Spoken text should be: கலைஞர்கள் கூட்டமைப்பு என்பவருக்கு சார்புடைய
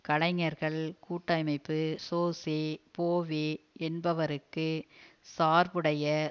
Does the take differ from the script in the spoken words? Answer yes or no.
yes